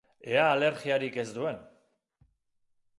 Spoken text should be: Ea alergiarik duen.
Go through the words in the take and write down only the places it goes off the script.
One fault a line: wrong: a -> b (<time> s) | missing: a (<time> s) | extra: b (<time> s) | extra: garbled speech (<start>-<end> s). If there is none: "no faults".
extra: ez (1.1 s)